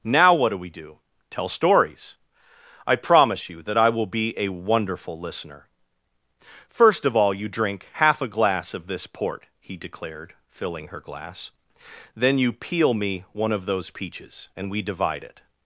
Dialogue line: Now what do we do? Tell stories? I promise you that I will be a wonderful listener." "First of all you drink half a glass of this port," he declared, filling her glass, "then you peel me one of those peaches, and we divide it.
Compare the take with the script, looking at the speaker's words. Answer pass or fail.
pass